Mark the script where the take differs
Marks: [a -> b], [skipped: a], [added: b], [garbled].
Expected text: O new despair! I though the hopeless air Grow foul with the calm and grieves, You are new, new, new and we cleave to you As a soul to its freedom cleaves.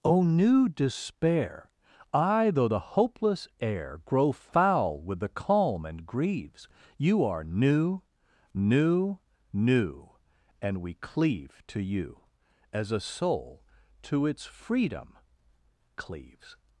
O new despair! I though the hopeless air Grow foul with the calm and grieves, You are new, new, new and we cleave to you As a soul to its freedom cleaves.